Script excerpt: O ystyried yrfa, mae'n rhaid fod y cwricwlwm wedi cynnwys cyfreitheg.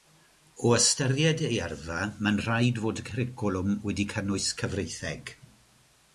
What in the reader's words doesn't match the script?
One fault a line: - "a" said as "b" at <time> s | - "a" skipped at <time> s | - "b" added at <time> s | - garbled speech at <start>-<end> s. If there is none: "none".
- "ei" added at 1.5 s